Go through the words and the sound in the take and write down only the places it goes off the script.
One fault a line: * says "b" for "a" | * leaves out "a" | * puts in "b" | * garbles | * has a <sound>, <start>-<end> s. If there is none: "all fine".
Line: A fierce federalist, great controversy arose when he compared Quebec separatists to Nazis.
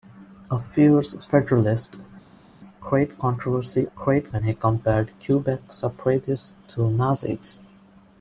* says "great" for "arose"